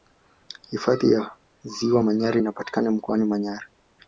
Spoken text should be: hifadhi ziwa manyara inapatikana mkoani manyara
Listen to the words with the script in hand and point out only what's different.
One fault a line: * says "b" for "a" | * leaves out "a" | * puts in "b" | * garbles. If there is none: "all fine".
* puts in "ya"